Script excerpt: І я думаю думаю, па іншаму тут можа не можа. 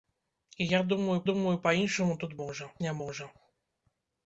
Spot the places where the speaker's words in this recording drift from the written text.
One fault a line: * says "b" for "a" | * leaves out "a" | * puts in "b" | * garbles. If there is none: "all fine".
all fine